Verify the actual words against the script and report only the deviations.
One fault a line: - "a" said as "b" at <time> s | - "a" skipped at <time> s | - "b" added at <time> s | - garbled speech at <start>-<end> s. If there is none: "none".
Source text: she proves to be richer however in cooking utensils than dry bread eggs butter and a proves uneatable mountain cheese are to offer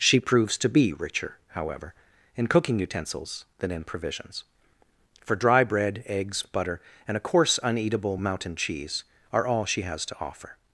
- "in provisions for" added at 3.7 s
- "proves" said as "coarse" at 7.2 s
- "all she has" added at 9.5 s